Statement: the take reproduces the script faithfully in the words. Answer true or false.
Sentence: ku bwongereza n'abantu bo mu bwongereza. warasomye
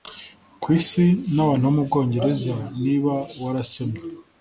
false